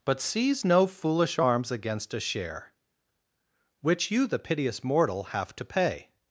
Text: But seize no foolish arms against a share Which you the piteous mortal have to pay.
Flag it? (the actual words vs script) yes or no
no